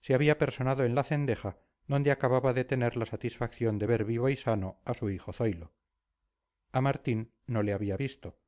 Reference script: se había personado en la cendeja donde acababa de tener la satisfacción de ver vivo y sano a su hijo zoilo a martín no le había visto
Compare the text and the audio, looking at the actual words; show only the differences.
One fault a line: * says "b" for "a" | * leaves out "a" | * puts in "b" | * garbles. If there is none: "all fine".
all fine